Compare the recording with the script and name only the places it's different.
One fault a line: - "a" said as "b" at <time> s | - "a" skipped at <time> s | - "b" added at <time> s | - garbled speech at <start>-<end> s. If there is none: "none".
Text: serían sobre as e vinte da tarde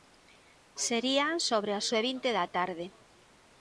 none